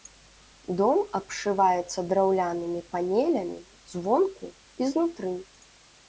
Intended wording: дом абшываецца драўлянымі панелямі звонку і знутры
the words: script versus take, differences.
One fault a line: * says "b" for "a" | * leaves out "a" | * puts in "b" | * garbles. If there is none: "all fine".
all fine